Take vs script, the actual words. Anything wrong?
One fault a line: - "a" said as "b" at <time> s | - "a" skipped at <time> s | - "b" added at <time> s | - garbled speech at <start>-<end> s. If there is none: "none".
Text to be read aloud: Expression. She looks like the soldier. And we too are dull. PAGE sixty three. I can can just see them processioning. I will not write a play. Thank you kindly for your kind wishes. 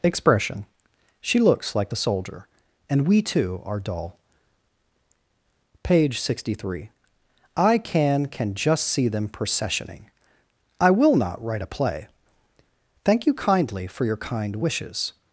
none